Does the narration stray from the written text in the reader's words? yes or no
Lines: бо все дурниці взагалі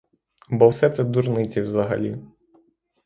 yes